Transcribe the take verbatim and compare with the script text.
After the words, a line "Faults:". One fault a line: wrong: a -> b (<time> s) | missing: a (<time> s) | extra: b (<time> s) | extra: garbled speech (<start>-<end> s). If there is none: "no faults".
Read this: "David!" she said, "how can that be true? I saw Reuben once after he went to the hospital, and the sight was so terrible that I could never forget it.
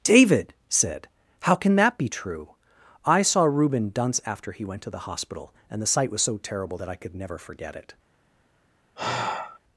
"David!" said, "how can that be true? I saw Reuben dunce after he went to the hospital, and the sight was so terrible that I could never forget it.
Faults:
missing: she (0.5 s)
wrong: once -> dunce (3.9 s)